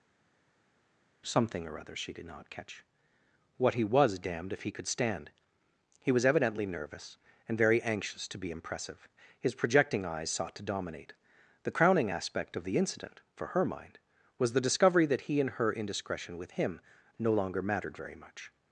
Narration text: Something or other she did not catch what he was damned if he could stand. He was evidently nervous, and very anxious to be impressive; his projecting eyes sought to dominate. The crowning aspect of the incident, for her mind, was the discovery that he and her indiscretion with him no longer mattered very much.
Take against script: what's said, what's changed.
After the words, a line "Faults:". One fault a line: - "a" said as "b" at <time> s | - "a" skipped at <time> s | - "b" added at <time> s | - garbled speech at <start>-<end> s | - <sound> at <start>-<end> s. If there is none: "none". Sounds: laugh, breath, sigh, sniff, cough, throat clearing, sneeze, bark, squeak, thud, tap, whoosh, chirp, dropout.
Something or other she did not catch what he was damned if he could stand. He was evidently nervous, and very anxious to be impressive; his projecting eyes sought to dominate. The crowning aspect of the incident, for her mind, was the discovery that he and her indiscretion with him no longer mattered very much.
Faults:
none